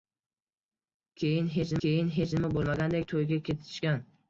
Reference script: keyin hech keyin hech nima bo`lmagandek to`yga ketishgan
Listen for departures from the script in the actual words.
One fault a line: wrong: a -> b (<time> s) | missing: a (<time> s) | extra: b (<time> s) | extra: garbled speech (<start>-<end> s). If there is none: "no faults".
no faults